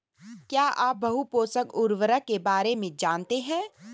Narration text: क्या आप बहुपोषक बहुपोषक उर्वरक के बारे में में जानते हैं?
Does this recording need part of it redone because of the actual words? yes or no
yes